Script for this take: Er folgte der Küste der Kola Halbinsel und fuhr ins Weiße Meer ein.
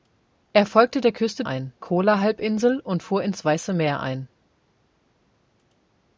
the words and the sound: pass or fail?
fail